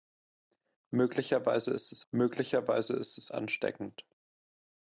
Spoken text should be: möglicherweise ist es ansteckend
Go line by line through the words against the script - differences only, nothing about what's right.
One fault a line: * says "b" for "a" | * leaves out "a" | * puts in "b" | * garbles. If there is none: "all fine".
* puts in "möglicherweise ist es"